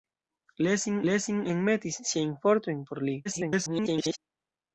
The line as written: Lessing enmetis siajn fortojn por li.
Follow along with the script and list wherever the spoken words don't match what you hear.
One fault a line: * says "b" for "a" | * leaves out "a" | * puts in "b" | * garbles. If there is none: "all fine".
* puts in "lessing"
* garbles